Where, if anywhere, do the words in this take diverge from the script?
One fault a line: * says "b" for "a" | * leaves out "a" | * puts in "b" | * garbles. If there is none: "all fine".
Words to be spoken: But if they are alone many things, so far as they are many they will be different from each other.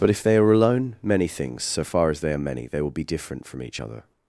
all fine